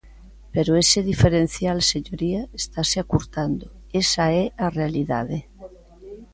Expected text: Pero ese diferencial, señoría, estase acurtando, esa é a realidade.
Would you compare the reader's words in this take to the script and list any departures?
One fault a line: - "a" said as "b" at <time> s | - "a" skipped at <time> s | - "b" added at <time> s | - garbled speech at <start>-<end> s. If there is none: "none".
none